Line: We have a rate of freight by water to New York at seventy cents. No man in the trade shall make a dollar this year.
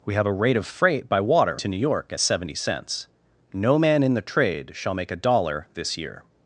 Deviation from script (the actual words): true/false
false